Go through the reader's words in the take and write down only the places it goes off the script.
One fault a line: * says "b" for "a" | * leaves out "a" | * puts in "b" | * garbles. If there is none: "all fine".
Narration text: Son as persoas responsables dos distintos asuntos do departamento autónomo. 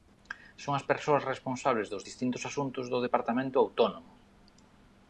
all fine